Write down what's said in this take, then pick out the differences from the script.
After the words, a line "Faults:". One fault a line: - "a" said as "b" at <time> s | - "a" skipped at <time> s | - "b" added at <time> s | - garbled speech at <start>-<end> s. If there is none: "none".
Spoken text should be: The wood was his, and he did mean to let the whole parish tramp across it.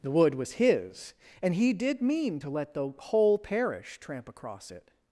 The wood was his, and he did mean to let the whole parish tramp across it.
Faults:
none